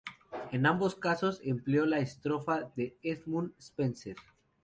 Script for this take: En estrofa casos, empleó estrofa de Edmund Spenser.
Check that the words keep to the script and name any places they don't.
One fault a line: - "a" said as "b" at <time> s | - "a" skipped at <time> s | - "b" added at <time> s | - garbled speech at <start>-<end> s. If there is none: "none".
- "estrofa" said as "ambos" at 0.7 s
- "la" added at 1.9 s